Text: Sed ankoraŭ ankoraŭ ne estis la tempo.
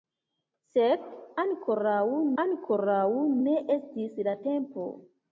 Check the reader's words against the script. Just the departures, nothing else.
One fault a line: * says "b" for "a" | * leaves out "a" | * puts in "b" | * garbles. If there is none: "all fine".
all fine